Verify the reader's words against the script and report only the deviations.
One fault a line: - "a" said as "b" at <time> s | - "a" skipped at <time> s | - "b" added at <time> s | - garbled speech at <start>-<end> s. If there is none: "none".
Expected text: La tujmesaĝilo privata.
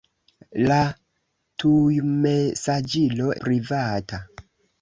none